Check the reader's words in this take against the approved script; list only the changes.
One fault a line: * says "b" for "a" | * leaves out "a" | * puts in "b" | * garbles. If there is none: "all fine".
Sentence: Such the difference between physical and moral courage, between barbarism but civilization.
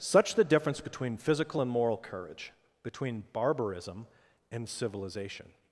* says "and" for "but"